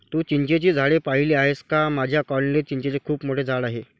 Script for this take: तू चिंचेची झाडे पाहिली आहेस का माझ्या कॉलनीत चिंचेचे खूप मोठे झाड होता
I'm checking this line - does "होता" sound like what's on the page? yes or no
no